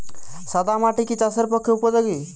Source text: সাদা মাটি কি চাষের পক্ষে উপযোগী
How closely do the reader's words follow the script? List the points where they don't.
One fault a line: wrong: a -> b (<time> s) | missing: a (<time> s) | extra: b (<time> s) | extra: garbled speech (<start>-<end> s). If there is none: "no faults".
no faults